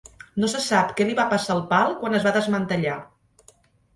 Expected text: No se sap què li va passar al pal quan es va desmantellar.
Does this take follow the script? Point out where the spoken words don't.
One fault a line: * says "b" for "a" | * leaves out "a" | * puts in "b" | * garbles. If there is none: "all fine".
all fine